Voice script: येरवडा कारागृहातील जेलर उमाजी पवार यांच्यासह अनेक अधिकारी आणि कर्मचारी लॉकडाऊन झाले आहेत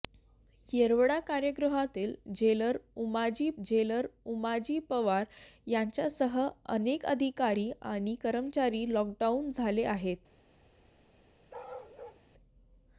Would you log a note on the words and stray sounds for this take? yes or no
yes